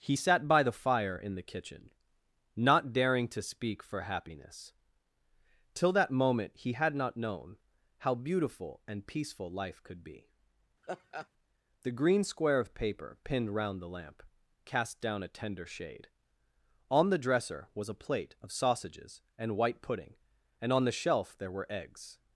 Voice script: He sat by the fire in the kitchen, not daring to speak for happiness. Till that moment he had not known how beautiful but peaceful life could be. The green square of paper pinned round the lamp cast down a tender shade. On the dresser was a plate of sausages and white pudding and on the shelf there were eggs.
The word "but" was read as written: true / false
false